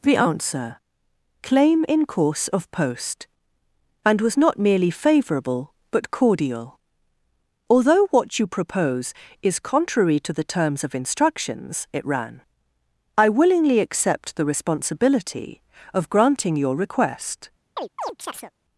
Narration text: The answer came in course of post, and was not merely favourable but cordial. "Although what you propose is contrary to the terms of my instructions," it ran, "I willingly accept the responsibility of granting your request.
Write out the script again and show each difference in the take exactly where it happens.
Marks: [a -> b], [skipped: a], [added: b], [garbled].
The answer [came -> claim] in course of post, and was not merely favourable but cordial. "Although what you propose is contrary to the terms of [skipped: my] instructions," it ran, "I willingly accept the responsibility of granting your request.